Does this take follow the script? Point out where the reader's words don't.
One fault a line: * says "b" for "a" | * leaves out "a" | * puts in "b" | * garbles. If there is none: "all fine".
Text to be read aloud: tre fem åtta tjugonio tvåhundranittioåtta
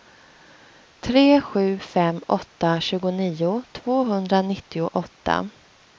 * puts in "sju"